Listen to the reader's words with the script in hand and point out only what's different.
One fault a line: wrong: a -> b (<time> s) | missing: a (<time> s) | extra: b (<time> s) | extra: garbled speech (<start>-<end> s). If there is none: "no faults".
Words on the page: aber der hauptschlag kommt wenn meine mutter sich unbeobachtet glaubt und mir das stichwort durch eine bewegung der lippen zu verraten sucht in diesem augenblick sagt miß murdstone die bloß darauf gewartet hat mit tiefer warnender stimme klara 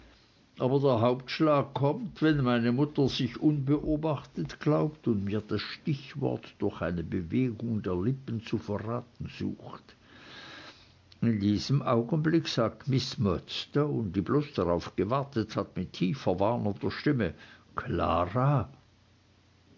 no faults